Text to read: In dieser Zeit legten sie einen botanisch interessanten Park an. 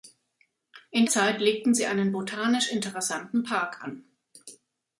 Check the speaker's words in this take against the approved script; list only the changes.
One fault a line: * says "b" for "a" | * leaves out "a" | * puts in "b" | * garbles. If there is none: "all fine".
* leaves out "dieser"